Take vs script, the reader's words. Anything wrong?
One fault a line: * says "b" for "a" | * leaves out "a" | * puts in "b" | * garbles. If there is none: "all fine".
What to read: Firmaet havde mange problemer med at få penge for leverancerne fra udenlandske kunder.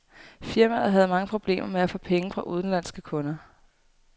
* leaves out "for leverancerne"